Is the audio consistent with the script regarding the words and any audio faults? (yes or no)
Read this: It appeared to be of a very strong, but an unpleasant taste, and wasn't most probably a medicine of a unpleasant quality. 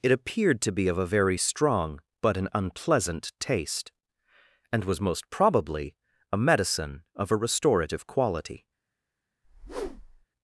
no